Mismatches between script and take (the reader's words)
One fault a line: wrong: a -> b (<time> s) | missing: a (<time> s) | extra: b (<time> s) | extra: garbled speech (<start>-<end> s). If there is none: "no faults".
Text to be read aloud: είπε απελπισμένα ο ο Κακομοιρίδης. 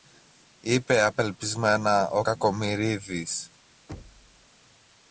missing: ο (2.2 s)